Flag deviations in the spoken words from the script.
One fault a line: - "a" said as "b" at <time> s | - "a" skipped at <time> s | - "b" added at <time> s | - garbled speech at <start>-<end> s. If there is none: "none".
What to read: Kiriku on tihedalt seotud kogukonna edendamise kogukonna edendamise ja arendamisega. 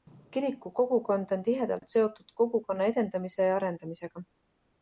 - "kogukond" added at 0.8 s
- "kogukonna edendamise" skipped at 3.5 s